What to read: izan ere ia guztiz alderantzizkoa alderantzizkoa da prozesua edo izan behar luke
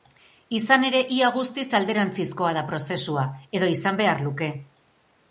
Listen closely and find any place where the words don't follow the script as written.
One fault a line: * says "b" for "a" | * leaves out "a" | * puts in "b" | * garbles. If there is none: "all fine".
* leaves out "alderantzizkoa"